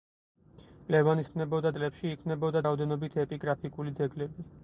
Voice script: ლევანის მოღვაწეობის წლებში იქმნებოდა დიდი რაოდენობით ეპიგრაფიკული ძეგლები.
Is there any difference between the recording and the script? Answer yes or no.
yes